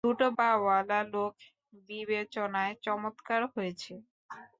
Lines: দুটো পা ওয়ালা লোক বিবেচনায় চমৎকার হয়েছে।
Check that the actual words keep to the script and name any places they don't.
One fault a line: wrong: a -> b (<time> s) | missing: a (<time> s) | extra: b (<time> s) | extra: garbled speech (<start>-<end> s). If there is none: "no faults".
no faults